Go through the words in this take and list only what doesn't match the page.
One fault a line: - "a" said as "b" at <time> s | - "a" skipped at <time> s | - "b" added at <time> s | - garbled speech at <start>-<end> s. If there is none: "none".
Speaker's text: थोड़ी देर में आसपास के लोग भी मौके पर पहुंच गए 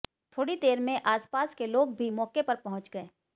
none